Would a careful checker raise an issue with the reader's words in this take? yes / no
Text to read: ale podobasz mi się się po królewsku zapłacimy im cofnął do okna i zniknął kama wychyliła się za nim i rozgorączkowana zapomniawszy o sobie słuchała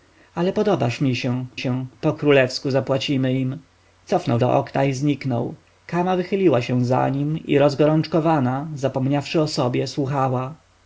no